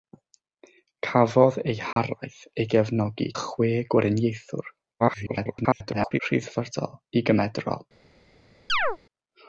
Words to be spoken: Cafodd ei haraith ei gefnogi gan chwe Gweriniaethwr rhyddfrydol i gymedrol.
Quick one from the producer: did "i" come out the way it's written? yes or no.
yes